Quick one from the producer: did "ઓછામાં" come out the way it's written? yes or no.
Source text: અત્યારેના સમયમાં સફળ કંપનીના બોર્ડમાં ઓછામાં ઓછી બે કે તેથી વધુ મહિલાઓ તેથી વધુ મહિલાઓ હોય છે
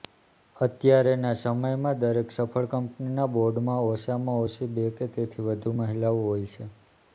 yes